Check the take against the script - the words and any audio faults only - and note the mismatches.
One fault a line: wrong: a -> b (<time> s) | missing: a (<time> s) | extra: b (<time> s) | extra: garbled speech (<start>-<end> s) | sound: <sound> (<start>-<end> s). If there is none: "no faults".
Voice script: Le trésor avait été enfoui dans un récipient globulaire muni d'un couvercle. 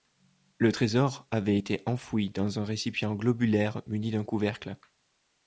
no faults